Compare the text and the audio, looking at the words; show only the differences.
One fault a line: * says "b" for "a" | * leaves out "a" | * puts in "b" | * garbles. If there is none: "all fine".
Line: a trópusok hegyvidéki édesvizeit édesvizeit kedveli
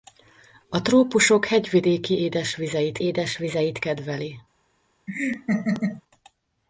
all fine